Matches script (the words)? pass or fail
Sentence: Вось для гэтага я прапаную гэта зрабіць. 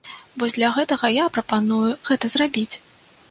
pass